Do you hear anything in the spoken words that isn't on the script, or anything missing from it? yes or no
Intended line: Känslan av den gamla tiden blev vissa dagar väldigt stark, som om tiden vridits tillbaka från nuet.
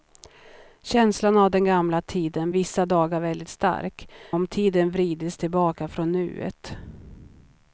yes